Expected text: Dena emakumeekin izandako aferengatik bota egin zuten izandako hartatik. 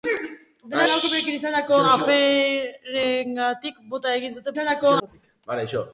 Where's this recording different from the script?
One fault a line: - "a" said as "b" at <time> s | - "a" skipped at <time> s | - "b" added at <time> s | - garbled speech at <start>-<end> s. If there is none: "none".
none